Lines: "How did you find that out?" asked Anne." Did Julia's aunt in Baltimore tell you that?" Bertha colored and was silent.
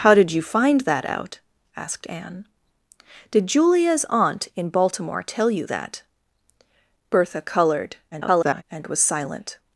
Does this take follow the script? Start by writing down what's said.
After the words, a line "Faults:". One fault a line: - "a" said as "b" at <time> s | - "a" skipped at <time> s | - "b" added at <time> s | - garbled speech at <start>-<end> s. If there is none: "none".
"How did you find that out?" asked Anne." Did Julia's aunt in Baltimore tell you that?" Bertha colored [garbled] and was silent.
Faults:
- garbled speech at 8.1-8.6 s